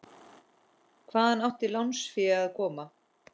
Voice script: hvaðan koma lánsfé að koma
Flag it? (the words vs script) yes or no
yes